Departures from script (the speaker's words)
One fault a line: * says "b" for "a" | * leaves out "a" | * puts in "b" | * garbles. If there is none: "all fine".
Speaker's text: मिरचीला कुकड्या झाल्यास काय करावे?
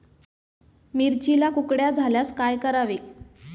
all fine